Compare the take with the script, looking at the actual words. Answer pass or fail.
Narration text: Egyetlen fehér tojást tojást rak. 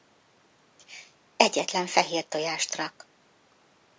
fail